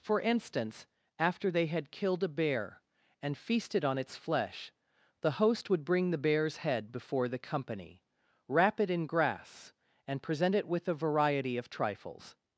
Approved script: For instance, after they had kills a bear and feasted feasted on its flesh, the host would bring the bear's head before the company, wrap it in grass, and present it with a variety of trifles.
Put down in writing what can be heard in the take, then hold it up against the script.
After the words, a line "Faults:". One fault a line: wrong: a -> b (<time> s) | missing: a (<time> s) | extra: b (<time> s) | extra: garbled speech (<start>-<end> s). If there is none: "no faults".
For instance, after they had killed a bear and feasted on its flesh, the host would bring the bear's head before the company, wrap it in grass, and present it with a variety of trifles.
Faults:
wrong: kills -> killed (1.9 s)
missing: feasted (3.9 s)